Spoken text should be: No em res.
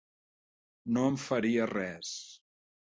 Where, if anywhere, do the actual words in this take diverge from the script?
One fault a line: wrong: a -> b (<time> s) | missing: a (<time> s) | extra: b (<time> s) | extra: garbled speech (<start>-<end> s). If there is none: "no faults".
extra: faria (1.2 s)